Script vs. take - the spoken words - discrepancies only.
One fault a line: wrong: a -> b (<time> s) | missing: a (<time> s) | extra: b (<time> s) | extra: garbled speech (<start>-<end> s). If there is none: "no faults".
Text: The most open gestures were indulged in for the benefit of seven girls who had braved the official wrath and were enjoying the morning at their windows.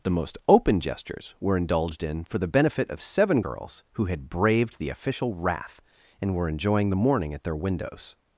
no faults